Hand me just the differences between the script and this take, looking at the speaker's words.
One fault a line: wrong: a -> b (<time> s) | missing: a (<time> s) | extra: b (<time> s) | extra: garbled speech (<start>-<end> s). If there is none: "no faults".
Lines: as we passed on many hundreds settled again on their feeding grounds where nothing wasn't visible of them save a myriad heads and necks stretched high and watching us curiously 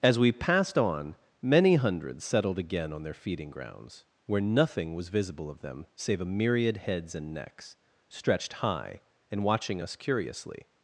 wrong: wasn't -> was (5.0 s)